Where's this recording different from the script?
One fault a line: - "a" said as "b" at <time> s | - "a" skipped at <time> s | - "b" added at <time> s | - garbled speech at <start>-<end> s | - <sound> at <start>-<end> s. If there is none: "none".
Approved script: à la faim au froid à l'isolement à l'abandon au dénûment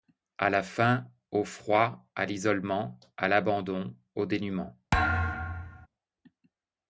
- thud at 4.9-5.9 s